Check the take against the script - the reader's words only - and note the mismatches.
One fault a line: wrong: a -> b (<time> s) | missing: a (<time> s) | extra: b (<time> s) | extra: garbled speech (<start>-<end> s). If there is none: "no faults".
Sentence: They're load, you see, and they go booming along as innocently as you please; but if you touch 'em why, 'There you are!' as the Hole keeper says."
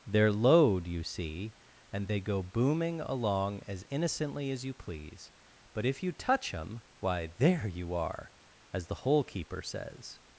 no faults